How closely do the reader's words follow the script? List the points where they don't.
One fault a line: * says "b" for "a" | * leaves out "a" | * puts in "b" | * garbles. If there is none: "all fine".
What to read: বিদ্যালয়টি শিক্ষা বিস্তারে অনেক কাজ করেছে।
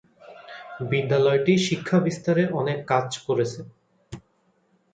all fine